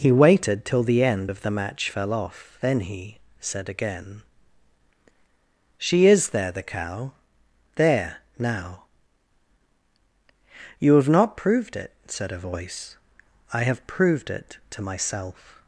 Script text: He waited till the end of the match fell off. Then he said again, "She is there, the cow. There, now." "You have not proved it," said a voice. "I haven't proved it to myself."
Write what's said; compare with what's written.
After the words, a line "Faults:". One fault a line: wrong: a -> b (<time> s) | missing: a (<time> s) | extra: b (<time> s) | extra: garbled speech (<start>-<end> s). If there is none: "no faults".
He waited till the end of the match fell off. Then he said again, "She is there, the cow. There, now." "You have not proved it," said a voice. "I have proved it to myself."
Faults:
wrong: haven't -> have (13.6 s)